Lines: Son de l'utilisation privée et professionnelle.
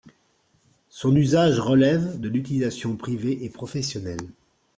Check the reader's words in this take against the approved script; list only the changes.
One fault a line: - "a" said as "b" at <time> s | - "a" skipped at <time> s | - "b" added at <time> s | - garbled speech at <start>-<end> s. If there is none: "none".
- "usage relève" added at 1.1 s